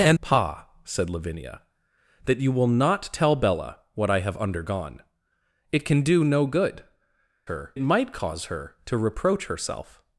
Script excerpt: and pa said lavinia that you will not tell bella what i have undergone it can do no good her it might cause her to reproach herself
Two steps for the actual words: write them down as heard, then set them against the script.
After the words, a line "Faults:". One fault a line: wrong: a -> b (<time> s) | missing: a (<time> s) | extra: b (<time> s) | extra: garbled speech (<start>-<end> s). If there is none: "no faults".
and pa said lavinia that you will not tell bella what i have undergone it can do no good her it might cause her to reproach herself
Faults:
no faults